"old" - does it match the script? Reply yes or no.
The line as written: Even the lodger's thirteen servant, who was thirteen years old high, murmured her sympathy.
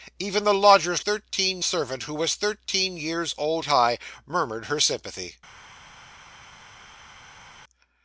yes